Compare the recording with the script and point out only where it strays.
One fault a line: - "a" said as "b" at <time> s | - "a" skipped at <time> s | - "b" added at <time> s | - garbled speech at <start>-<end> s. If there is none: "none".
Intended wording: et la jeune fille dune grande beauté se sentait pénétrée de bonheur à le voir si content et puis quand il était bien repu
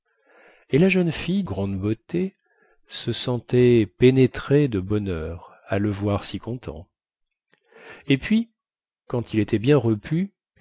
- "dune" skipped at 1.4 s